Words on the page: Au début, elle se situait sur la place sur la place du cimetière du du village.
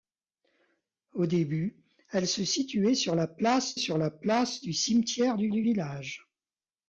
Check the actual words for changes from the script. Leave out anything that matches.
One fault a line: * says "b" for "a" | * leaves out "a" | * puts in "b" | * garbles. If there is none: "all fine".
all fine